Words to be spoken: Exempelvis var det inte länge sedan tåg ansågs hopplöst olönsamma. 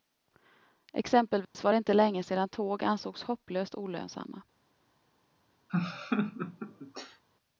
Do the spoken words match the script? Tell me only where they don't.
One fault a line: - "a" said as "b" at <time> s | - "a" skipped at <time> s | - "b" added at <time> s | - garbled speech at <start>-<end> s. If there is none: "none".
none